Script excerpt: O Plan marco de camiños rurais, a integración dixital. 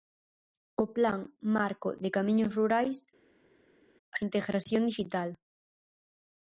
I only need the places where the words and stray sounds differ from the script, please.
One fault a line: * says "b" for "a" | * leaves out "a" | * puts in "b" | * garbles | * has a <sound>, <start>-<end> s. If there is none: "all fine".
all fine